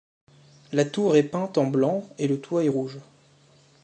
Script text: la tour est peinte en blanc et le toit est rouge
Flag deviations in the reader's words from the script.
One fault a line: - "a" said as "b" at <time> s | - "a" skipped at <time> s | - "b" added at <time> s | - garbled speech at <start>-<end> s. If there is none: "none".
none